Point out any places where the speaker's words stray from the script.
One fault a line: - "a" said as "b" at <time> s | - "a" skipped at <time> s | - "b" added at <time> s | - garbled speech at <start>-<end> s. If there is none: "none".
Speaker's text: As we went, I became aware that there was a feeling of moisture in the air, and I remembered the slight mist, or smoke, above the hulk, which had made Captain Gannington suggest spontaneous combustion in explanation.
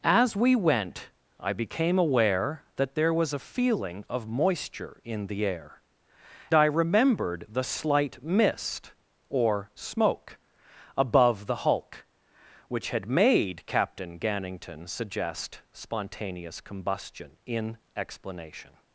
- "and" skipped at 5.8 s